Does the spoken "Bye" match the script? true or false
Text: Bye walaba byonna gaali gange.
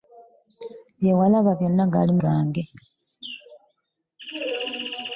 true